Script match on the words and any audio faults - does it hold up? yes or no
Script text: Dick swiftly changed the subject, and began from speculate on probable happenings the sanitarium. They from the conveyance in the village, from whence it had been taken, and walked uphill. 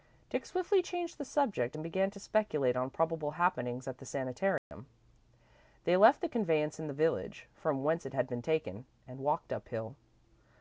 no